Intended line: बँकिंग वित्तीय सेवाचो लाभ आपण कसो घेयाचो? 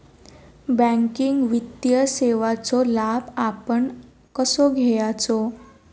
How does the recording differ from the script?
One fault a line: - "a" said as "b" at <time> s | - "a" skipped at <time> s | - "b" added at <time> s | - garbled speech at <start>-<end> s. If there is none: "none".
none